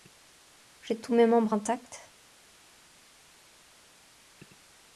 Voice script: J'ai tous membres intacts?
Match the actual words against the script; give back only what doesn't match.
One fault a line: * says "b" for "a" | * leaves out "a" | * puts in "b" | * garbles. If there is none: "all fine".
* puts in "mes"